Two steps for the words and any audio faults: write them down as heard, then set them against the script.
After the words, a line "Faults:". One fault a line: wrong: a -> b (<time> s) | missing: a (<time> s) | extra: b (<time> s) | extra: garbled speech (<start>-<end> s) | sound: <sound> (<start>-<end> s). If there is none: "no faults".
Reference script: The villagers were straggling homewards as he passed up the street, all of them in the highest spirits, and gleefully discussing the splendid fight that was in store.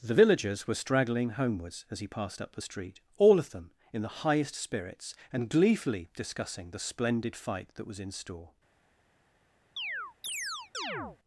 The villagers were straggling homewards as he passed up the street, all of them in the highest spirits, and gleefully discussing the splendid fight that was in store.
Faults:
sound: chirp (9.8-11.2 s)